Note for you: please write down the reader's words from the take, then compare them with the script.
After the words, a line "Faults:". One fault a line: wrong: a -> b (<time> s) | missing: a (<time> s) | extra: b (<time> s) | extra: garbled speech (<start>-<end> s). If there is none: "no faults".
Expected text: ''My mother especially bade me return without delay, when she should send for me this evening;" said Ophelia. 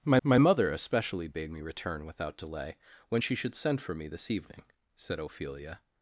''My my mother especially bade me return without delay, when she should send for me this evening;" said Ophelia.
Faults:
extra: my (0.2 s)